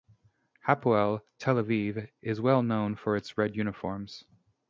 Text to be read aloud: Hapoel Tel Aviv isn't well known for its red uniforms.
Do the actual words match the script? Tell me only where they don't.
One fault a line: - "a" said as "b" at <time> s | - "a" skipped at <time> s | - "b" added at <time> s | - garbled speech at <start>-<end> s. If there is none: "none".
- "isn't" said as "is" at 2.2 s